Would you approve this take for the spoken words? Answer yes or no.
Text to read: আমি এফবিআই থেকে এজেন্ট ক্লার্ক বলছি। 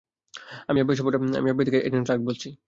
yes